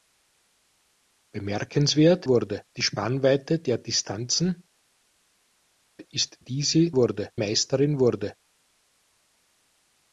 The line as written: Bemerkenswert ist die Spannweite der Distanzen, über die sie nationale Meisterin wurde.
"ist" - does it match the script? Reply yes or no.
no